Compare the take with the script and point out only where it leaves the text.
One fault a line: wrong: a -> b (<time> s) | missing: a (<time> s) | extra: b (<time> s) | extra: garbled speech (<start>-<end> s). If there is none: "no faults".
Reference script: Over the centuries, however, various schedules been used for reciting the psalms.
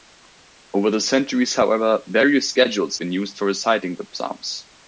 no faults